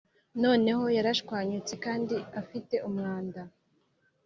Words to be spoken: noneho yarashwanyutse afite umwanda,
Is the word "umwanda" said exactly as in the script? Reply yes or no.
yes